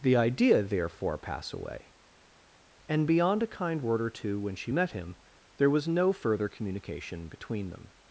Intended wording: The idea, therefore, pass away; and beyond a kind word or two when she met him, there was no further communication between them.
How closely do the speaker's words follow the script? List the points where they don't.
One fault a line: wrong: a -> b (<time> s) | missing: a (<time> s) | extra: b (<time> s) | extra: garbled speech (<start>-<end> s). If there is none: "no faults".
no faults